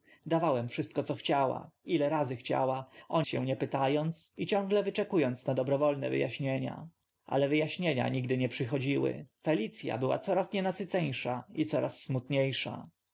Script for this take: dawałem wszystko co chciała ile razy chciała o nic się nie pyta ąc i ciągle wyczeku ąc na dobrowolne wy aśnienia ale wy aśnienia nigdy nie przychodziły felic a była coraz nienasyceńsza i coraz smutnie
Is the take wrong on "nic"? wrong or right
wrong